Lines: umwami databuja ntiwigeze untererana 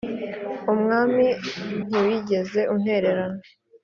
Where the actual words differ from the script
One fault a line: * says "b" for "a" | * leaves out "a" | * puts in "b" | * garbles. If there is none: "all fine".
* leaves out "databuja"